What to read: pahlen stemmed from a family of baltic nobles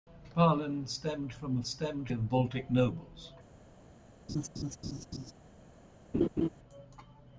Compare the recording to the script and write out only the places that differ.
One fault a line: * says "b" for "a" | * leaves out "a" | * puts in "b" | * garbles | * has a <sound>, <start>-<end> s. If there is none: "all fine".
* says "stemmed" for "family"
* has a laugh, 4.3-5.3 s
* has a laugh, 6.1-6.5 s